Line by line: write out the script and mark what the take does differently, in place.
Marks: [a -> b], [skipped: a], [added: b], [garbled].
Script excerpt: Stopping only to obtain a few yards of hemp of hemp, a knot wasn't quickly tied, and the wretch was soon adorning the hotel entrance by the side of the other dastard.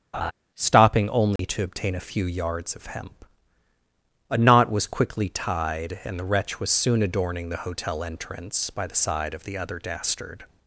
Stopping only to obtain a few yards of hemp [skipped: of hemp,] a knot [wasn't -> was] quickly tied, and the wretch was soon adorning the hotel entrance by the side of the other dastard.